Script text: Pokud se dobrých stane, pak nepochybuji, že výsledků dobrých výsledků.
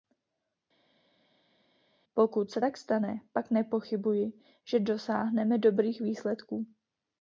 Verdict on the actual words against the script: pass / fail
fail